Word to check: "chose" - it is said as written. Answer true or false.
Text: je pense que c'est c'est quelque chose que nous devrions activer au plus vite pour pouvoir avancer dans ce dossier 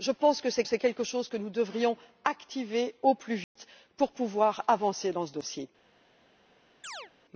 true